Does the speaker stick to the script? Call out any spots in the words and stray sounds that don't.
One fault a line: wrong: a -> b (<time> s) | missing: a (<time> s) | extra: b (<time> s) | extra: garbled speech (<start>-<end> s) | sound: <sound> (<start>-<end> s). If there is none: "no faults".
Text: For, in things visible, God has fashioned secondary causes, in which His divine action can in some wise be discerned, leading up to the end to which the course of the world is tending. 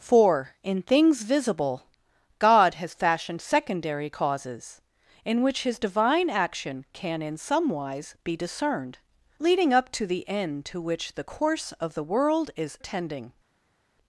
no faults